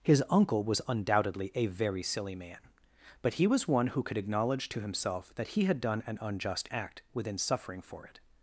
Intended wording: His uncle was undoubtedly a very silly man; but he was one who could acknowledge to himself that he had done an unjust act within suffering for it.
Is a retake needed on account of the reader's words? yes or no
no